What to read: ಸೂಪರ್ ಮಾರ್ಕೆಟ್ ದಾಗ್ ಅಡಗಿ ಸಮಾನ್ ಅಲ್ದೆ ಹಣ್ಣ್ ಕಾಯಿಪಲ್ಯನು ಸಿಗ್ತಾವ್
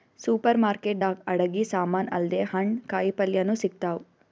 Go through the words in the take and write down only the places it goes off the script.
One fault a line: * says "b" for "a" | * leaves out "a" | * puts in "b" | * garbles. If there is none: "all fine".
all fine